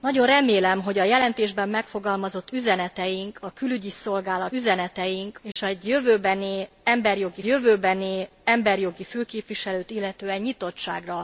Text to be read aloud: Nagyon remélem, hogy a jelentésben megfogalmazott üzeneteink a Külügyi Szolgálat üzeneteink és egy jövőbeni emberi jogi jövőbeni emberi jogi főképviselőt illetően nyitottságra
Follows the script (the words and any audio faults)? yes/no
no